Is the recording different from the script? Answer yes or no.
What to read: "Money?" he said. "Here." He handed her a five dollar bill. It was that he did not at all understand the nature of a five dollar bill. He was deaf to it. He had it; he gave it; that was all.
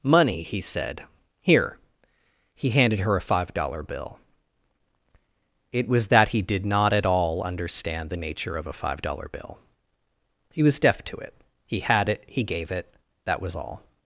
no